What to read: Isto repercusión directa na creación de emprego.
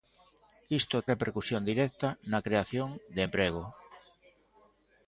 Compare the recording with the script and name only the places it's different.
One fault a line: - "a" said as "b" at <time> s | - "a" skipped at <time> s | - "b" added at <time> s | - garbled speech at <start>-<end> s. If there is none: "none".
none